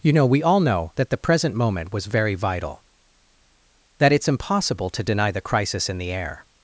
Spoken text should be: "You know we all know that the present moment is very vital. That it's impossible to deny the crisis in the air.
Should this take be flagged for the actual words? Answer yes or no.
yes